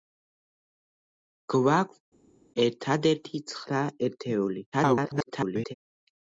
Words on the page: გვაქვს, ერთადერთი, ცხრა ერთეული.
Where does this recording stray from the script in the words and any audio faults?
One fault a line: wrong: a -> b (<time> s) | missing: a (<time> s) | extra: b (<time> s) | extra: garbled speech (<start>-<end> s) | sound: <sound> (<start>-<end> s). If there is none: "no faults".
extra: garbled speech (4.7-5.7 s)